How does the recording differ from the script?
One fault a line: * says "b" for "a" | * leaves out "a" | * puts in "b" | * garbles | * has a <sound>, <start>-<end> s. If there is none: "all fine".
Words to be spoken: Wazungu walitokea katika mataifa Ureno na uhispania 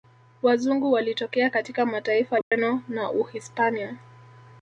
* has a dropout, 2.4-2.5 s